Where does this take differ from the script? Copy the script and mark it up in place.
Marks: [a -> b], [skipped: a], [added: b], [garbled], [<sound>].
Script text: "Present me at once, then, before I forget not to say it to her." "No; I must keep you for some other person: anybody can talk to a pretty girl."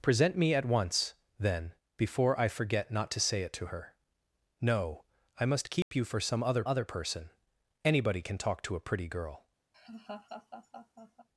"Present me at once, then, before I forget not to say it to her." "No; I must keep [dropout] you for some other [added: other] person: anybody can talk to a pretty girl." [laugh]